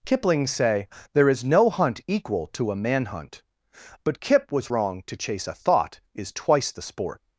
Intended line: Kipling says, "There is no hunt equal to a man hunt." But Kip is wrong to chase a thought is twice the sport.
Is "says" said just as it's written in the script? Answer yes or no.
no